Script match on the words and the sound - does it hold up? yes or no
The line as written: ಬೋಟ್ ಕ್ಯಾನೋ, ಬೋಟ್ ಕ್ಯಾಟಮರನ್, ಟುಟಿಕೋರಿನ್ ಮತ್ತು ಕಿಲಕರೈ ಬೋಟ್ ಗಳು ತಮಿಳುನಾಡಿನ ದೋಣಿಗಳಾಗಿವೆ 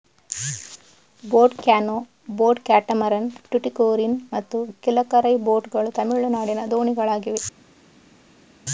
yes